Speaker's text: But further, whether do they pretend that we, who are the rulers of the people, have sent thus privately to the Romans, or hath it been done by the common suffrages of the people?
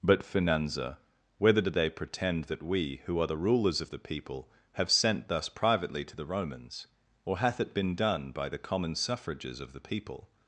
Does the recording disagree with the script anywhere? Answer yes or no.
yes